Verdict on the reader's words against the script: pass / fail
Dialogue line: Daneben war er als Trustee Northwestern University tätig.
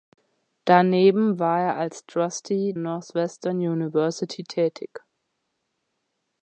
pass